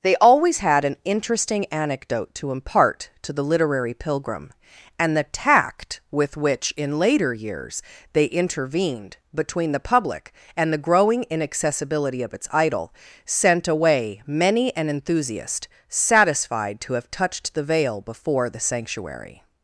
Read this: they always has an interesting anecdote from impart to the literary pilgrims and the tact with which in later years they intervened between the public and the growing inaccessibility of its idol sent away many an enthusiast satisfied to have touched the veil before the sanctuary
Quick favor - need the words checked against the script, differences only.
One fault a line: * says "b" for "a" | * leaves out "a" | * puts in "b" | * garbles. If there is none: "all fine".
* says "had" for "has"
* says "to" for "from"
* says "pilgrim" for "pilgrims"